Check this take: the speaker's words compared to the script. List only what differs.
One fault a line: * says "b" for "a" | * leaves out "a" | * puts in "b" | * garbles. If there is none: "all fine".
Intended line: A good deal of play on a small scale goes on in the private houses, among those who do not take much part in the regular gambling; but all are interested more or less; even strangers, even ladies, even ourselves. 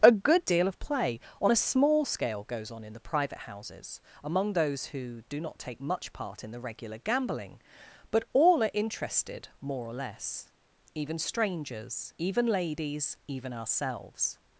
all fine